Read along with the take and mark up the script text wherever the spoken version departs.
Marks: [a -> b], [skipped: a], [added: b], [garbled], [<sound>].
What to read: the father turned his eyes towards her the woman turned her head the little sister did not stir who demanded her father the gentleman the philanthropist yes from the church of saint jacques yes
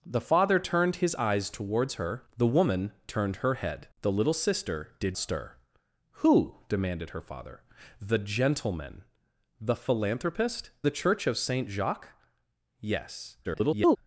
the father turned his eyes towards her the woman turned her head the little sister did [skipped: not] stir who demanded her father the gentleman the philanthropist [skipped: yes from] the church of saint jacques yes [garbled]